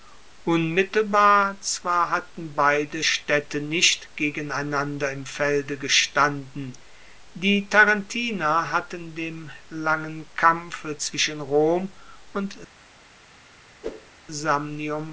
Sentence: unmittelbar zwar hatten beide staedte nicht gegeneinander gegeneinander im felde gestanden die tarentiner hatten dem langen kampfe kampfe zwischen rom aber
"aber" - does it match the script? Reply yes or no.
no